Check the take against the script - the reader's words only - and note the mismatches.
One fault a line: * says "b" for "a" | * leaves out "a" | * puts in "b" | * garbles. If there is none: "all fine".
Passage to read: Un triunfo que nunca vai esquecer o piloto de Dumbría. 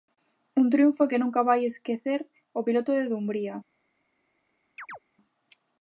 all fine